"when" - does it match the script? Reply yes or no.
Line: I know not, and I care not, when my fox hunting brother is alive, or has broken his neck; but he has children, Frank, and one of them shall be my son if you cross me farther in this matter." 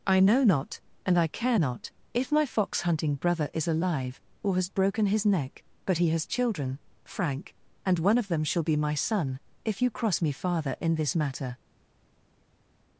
no